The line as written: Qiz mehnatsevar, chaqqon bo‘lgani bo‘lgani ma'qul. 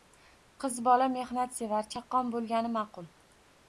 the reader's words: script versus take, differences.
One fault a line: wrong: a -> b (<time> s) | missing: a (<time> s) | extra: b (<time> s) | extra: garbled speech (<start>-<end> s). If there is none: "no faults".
extra: bola (0.9 s)
missing: bo‘lgani (2.8 s)